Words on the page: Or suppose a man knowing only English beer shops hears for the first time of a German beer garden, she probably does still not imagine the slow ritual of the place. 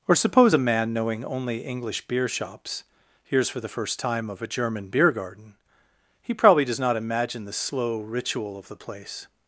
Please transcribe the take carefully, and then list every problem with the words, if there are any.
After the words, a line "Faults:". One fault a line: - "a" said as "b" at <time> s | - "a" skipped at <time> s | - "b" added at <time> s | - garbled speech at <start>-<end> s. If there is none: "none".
Or suppose a man knowing only English beer shops hears for the first time of a German beer garden, he probably does not imagine the slow ritual of the place.
Faults:
- "she" said as "he" at 6.2 s
- "still" skipped at 6.8 s